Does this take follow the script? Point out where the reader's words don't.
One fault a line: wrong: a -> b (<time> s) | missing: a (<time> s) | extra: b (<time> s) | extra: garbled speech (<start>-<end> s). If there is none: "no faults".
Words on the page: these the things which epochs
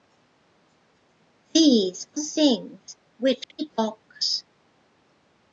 no faults